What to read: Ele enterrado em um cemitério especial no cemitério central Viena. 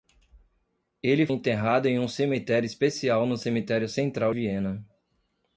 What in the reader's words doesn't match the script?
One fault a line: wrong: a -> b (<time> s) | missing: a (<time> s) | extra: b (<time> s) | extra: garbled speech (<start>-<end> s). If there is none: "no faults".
no faults